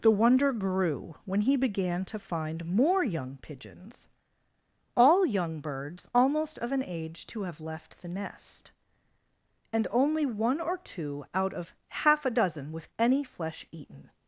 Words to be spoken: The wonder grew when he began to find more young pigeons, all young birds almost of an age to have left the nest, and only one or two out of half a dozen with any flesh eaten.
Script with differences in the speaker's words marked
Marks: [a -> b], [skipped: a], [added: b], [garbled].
The wonder grew when he began to find more young pigeons, all young birds almost of an age to have left the nest, and only one or two out of half a dozen with any flesh eaten.